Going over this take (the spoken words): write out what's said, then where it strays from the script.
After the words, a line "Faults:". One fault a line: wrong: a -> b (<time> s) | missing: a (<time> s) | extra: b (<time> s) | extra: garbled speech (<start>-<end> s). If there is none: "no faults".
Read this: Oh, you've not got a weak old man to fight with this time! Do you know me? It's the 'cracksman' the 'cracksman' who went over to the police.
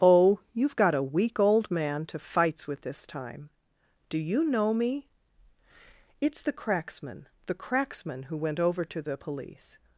Oh, you've got a weak old man to fights with this time! Do you know me? It's the 'cracksman' the 'cracksman' who went over to the police.
Faults:
missing: not (0.8 s)
wrong: fight -> fights (2.2 s)